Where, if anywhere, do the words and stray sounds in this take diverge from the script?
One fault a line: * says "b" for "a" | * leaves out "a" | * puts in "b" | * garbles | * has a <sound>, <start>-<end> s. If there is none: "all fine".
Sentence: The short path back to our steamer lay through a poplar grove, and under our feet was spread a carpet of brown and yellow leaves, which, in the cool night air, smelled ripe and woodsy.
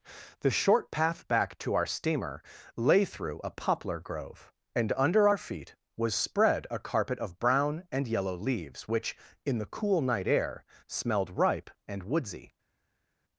all fine